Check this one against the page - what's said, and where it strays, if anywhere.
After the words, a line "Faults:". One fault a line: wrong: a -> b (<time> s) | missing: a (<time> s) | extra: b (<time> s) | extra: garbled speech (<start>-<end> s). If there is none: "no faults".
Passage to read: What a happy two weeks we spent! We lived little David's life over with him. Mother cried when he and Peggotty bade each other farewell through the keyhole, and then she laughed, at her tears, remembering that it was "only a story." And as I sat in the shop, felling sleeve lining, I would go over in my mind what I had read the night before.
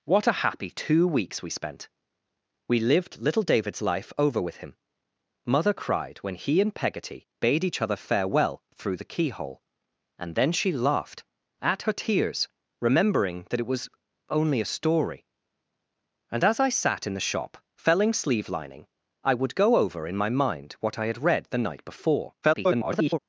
What a happy two weeks we spent! We lived little David's life over with him. Mother cried when he and Peggotty bade each other farewell through the keyhole, and then she laughed, at her tears, remembering that it was "only a story." And as I sat in the shop, felling sleeve lining, I would go over in my mind what I had read the night before. [garbled]
Faults:
extra: garbled speech (22.4-23.2 s)